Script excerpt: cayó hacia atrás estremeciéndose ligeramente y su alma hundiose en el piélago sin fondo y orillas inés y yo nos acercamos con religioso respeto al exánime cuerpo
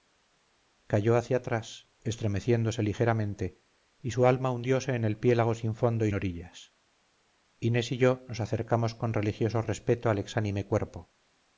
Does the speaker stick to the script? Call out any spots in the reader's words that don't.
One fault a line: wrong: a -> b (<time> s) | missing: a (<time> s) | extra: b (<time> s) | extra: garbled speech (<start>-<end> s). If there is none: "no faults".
no faults